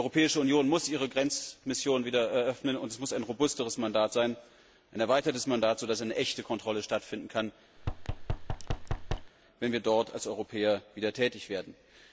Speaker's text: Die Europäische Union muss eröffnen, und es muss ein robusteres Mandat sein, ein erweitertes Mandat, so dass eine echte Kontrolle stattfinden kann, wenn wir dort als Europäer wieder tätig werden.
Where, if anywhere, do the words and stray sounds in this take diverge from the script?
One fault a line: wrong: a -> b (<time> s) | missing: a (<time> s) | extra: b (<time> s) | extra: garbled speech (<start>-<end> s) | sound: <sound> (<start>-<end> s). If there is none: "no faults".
extra: ihre Grenzmission wieder (0.9 s)
sound: thud (7.8-9.3 s)